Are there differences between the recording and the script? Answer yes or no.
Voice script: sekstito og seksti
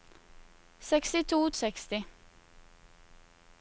no